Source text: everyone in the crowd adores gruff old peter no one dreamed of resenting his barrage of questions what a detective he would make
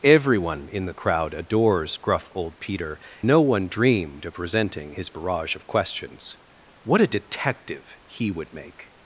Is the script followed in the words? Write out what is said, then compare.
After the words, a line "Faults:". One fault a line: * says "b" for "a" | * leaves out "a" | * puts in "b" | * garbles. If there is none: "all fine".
everyone in the crowd adores gruff old peter no one dreamed of resenting his barrage of questions what a detective he would make
Faults:
all fine